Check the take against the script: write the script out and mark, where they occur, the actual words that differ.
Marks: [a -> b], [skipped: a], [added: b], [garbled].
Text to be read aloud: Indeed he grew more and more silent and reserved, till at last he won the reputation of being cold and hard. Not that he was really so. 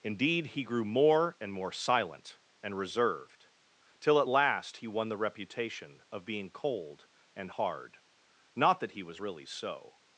Indeed he grew more and more silent and reserved, till at last he won the reputation of being cold and hard. Not that he was really so.